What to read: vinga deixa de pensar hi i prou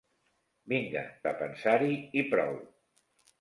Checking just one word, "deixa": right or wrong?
wrong